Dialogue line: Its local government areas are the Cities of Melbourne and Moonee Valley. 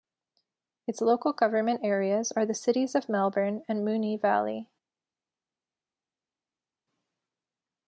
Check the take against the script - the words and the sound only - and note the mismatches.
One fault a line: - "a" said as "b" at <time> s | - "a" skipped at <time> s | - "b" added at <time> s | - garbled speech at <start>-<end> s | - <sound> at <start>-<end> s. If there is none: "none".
none